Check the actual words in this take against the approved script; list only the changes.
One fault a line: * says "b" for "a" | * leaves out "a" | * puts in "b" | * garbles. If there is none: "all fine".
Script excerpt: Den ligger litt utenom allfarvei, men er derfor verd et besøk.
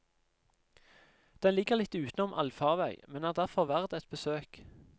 all fine